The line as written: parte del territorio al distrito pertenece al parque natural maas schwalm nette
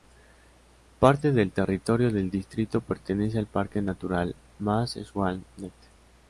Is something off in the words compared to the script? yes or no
yes